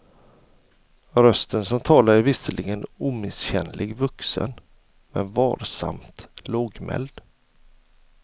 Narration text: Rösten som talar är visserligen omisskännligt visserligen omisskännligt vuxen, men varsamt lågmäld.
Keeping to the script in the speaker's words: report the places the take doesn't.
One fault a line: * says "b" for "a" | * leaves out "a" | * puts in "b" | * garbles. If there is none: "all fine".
* leaves out "visserligen omisskännligt"